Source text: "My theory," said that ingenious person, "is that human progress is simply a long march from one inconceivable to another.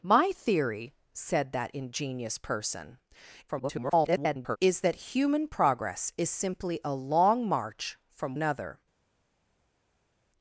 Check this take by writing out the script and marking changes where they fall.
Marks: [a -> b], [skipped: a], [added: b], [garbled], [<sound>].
"My theory," said that ingenious person, [garbled] "is that human progress is simply a long march from [skipped: one inconceivable to] another.